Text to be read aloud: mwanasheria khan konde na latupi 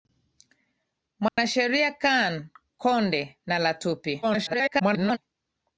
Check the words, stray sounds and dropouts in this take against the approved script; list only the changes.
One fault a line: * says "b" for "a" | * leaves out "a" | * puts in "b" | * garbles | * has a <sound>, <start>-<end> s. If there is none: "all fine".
* has a dropout, 1.3-1.4 s
* garbles